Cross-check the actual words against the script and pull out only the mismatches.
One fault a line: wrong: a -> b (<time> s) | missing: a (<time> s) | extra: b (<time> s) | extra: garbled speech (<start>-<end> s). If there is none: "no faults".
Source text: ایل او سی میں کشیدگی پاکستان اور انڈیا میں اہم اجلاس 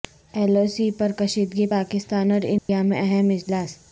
wrong: میں -> پر (0.9 s)